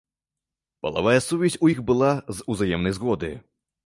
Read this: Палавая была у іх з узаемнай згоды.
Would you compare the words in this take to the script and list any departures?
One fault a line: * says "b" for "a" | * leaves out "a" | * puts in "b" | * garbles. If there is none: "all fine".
* says "сувязь" for "была"
* puts in "была"